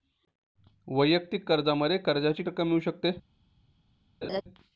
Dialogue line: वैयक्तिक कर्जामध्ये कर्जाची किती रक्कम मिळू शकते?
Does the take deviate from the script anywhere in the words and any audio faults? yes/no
yes